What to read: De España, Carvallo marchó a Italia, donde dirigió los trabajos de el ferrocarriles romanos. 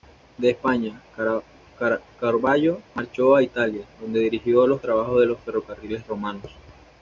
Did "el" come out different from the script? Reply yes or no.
yes